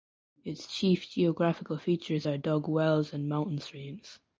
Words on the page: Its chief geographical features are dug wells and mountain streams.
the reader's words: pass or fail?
pass